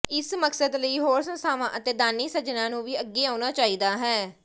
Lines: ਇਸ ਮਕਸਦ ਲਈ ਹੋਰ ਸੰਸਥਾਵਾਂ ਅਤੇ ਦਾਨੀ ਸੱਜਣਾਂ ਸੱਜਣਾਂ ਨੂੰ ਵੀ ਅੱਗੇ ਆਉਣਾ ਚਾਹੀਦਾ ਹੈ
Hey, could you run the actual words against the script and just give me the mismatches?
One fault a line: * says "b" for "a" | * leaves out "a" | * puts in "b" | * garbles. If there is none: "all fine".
* leaves out "ਸੱਜਣਾਂ"